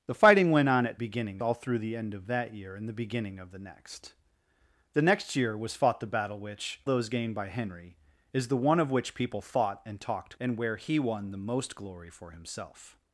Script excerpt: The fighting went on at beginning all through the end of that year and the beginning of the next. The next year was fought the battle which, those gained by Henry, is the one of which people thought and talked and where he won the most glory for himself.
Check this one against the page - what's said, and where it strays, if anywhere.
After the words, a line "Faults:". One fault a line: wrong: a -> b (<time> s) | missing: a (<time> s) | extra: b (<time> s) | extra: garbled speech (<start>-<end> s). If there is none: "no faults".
The fighting went on at beginning all through the end of that year and the beginning of the next. The next year was fought the battle which, those gained by Henry, is the one of which people thought and talked and where he won the most glory for himself.
Faults:
no faults